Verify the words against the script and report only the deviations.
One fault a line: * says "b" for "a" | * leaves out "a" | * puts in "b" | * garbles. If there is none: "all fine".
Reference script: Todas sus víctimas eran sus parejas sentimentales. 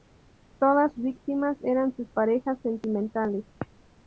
* leaves out "sus"